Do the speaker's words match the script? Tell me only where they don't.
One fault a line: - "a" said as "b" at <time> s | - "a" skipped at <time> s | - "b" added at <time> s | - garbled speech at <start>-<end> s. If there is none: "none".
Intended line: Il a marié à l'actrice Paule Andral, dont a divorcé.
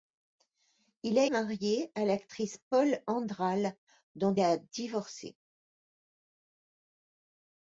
none